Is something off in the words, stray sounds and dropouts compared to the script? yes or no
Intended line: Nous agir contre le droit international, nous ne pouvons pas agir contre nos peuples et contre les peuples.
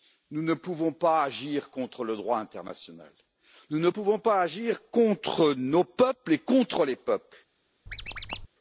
yes